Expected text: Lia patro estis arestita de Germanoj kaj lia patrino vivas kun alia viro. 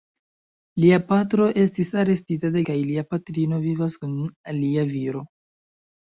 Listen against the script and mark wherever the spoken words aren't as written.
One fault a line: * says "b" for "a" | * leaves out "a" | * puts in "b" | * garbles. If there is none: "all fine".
* leaves out "Germanoj"